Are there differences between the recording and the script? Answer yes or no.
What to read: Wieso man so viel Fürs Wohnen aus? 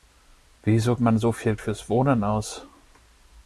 no